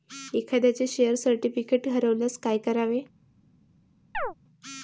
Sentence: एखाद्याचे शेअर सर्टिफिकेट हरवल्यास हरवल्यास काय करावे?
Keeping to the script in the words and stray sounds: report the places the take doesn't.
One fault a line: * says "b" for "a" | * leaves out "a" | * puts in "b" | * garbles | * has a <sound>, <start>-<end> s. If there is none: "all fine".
* leaves out "हरवल्यास"
* has a chirp, 4.1-4.3 s